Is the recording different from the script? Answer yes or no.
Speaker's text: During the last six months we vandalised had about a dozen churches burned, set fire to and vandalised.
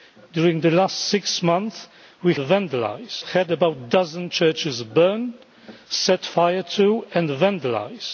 no